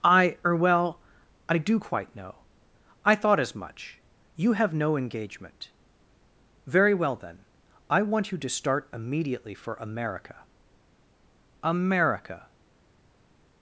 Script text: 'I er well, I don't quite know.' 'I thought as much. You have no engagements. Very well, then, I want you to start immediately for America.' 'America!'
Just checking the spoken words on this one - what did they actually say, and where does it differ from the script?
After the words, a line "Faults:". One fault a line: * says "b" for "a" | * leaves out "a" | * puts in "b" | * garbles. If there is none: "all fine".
'I er well, I do quite know.' 'I thought as much. You have no engagement. Very well, then, I want you to start immediately for America.' 'America!'
Faults:
* says "do" for "don't"
* says "engagement" for "engagements"